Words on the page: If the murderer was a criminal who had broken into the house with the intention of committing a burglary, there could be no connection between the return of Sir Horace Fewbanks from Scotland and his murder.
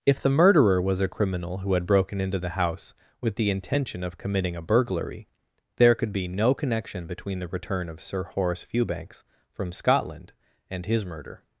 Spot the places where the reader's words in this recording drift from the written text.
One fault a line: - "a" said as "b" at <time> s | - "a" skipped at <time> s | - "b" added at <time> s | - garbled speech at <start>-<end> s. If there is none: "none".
none